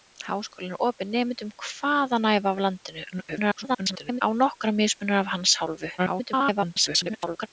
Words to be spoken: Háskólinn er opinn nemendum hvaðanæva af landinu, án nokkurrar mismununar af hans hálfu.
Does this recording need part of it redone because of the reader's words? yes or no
yes